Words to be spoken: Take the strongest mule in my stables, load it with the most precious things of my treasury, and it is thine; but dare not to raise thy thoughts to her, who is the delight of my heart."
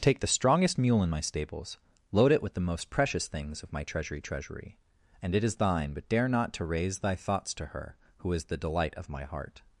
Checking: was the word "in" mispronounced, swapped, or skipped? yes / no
no